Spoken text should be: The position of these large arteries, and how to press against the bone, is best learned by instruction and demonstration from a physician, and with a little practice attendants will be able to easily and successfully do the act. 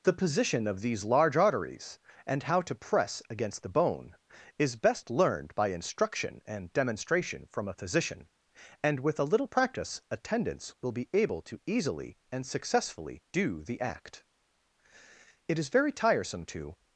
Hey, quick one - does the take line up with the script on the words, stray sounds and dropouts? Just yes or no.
no